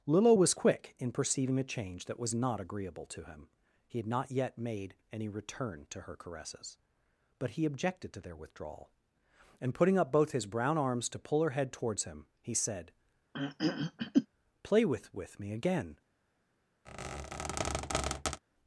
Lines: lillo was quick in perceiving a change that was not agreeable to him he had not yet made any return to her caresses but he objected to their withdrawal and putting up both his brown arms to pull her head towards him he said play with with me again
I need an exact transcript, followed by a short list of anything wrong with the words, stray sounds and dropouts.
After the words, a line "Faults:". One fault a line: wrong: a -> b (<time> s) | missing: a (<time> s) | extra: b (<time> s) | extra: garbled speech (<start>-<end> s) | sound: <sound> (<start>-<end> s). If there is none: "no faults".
lillo was quick in perceiving a change that was not agreeable to him he had not yet made any return to her caresses but he objected to their withdrawal and putting up both his brown arms to pull her head towards him he said play with with me again
Faults:
sound: throat clearing (13.3-14.3 s)
sound: squeak (16.9-18.4 s)